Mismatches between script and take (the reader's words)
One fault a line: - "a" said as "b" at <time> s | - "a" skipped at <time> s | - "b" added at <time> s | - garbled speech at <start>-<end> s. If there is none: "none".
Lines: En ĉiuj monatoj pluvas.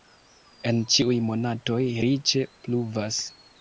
- "riĉe" added at 2.1 s